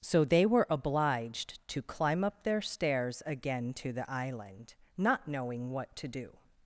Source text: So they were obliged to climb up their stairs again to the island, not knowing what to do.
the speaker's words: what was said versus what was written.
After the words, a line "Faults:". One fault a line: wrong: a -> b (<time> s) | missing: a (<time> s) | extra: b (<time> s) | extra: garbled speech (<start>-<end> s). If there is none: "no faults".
So they were obliged to climb up their stairs again to the island, not knowing what to do.
Faults:
no faults